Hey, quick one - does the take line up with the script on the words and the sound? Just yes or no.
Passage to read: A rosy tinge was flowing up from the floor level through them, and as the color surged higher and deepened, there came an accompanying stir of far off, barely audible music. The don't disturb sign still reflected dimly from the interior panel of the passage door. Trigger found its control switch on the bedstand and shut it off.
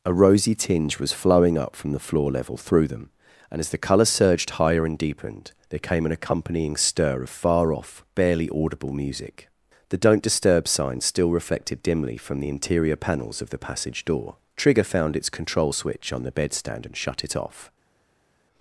no